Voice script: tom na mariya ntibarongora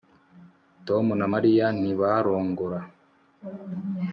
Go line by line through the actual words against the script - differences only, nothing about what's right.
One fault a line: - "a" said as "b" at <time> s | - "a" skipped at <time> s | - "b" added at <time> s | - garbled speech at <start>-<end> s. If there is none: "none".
none